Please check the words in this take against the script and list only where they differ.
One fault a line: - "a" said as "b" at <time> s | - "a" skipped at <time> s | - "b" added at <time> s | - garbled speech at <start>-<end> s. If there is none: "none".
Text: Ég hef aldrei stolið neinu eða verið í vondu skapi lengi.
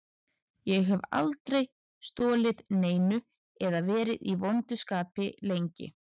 none